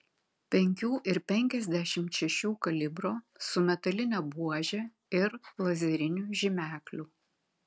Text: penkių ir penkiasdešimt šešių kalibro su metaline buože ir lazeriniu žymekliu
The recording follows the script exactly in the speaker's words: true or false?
true